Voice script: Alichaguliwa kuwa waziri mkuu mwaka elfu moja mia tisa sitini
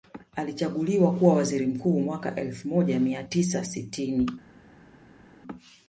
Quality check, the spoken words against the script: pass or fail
pass